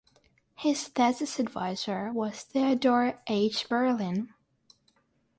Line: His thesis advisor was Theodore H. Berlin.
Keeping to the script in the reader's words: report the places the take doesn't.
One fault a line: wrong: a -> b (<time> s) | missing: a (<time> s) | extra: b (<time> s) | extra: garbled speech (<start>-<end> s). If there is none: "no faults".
no faults